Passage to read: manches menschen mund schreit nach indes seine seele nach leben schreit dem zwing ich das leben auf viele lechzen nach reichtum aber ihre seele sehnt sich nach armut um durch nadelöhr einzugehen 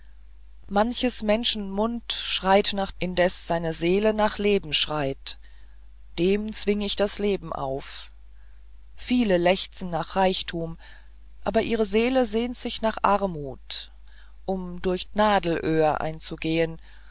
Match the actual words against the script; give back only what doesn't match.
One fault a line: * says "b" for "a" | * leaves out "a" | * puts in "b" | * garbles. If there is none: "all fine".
all fine